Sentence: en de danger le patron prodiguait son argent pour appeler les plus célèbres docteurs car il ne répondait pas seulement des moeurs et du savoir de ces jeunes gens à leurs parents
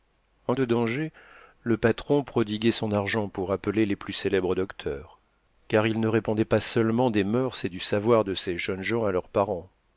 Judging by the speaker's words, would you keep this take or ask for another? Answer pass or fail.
pass